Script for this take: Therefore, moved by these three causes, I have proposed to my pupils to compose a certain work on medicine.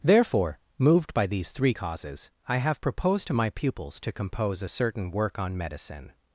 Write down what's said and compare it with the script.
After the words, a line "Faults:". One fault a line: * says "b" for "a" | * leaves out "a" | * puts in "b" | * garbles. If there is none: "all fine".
Therefore, moved by these three causes, I have proposed to my pupils to compose a certain work on medicine.
Faults:
all fine